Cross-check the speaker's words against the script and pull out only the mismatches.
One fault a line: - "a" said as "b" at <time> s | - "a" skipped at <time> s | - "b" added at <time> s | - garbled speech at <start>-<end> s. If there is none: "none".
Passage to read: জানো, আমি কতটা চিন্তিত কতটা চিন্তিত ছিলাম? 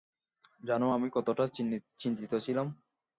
- "কতটা চিন্তিত" skipped at 2.3 s